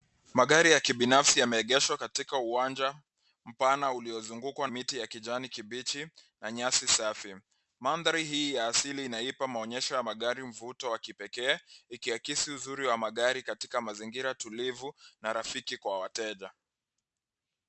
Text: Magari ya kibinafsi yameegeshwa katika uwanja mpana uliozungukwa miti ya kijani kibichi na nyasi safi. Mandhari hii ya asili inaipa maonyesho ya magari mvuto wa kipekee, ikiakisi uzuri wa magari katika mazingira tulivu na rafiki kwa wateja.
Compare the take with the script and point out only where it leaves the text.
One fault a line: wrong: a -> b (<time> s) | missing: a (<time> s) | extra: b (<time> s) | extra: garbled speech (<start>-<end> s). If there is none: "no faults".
no faults